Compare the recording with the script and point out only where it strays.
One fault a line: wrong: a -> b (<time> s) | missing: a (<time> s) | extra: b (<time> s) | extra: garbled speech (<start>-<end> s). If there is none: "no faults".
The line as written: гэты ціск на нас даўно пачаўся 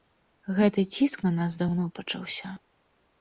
no faults